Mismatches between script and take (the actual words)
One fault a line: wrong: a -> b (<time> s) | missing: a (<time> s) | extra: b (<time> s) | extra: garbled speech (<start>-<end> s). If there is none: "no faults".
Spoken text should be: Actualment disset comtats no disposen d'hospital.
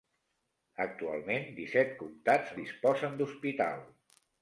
missing: no (2.5 s)